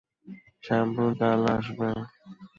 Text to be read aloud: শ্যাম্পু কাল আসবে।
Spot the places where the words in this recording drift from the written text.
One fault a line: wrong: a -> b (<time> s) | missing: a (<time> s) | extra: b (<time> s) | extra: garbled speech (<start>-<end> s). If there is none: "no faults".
no faults